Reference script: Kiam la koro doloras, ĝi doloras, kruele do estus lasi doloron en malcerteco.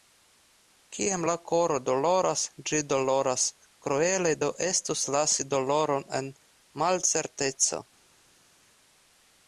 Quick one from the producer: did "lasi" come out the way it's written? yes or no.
yes